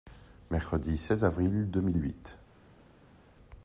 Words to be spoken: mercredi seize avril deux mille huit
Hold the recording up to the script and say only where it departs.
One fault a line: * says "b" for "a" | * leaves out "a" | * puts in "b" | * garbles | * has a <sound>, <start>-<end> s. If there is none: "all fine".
all fine